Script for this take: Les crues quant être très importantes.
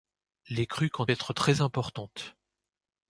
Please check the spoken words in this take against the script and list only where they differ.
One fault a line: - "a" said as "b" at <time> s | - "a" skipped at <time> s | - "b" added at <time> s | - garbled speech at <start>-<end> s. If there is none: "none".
none